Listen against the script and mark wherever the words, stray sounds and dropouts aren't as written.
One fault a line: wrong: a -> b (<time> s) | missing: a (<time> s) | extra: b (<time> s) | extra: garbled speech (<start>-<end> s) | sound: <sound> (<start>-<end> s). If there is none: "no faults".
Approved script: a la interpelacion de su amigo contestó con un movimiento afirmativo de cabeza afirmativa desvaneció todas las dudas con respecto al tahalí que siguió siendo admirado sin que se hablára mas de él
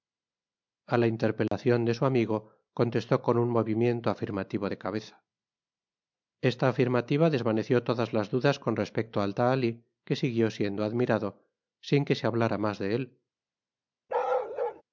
sound: dropout (1.5-1.5 s)
extra: esta (6.4 s)
sound: bark (14.1-14.8 s)